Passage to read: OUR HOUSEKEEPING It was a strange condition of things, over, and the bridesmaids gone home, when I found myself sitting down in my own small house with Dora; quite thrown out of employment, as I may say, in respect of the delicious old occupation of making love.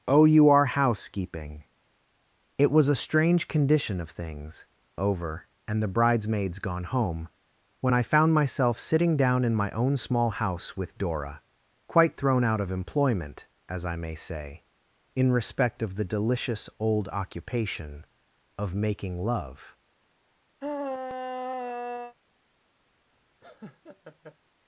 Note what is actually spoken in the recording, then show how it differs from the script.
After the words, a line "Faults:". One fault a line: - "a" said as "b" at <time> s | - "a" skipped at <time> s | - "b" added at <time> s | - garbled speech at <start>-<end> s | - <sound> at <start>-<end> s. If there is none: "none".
OUR HOUSEKEEPING It was a strange condition of things, over, and the bridesmaids gone home, when I found myself sitting down in my own small house with Dora; quite thrown out of employment, as I may say, in respect of the delicious old occupation of making love.
Faults:
- sigh at 20.6-22.1 s
- laugh at 23.4-24.4 s